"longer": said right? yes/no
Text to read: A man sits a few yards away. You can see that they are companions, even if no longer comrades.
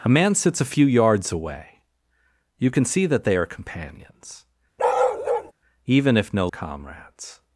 no